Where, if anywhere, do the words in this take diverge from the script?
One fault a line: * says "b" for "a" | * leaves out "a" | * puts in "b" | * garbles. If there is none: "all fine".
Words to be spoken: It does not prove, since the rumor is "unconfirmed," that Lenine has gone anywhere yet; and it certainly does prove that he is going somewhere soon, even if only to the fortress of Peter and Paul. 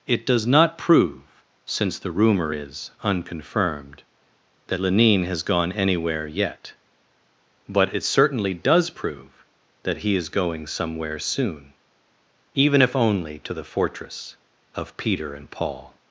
* says "but" for "and"